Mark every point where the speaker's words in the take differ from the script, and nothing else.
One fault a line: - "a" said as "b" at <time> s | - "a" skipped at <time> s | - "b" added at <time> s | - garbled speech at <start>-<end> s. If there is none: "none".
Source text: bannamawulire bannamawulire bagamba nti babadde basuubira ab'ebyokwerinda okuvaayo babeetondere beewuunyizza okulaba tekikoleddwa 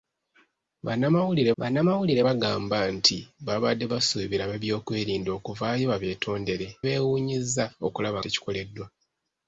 none